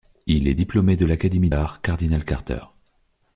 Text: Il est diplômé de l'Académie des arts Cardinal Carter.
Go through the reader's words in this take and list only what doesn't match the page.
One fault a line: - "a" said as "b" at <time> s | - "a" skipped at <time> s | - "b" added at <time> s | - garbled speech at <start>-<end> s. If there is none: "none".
- "des" skipped at 1.5 s